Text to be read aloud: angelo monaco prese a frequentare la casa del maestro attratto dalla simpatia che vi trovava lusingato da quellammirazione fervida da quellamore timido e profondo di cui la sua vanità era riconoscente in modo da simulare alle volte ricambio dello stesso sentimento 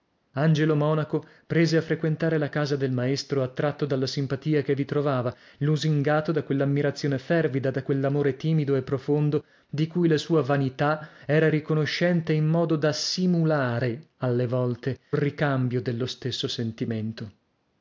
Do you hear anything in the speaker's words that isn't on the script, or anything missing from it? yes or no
no